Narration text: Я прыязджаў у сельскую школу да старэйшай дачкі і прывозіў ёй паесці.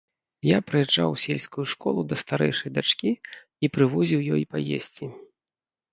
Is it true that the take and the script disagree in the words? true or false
false